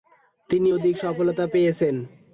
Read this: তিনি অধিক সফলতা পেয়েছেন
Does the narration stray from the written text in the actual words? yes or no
no